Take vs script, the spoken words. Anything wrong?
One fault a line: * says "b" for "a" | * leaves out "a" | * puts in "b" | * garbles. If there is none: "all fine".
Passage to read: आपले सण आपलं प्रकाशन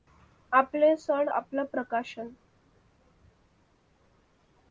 all fine